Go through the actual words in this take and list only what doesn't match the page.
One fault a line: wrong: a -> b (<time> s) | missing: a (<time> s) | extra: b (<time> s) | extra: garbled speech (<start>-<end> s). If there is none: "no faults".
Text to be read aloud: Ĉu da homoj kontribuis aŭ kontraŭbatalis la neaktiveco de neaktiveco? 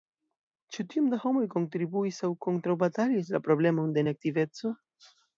extra: tiom (0.9 s)
wrong: neaktiveco -> problemon (3.5 s)